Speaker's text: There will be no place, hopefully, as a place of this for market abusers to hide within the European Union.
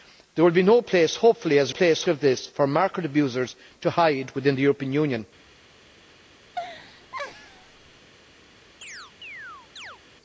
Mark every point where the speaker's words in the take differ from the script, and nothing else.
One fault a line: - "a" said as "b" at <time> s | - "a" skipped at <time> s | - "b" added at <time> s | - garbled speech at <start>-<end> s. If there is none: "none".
none